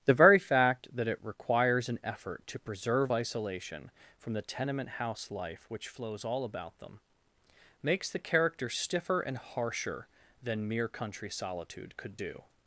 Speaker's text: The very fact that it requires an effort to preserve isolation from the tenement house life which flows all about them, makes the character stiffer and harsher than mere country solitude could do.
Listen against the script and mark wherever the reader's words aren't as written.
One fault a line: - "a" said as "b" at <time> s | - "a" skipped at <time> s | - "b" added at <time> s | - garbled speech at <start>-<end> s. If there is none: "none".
none